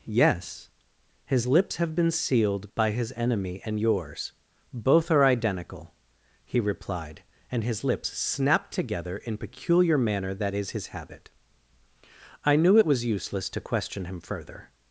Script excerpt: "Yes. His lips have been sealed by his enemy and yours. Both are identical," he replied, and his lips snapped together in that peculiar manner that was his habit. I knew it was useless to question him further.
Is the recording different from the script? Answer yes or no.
yes